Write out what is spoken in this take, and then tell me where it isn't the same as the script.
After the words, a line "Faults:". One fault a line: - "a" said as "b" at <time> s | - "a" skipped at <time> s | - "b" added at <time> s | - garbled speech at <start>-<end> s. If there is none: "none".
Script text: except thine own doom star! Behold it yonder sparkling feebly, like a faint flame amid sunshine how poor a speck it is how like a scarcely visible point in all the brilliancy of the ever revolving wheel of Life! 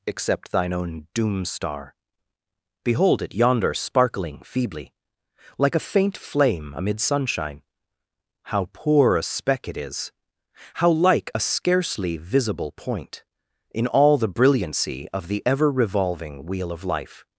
except thine own doom star! Behold it yonder sparkling feebly, like a faint flame amid sunshine how poor a speck it is how like a scarcely visible point in all the brilliancy of the ever revolving wheel of Life!
Faults:
none